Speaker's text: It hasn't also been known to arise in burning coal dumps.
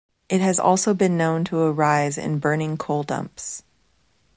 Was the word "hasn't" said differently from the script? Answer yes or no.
yes